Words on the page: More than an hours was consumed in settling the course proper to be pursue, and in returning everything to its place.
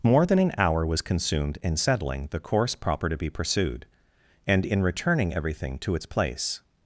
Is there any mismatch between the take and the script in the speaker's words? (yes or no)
yes